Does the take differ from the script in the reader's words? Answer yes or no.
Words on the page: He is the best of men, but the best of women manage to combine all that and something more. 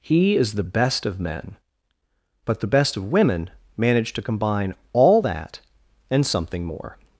no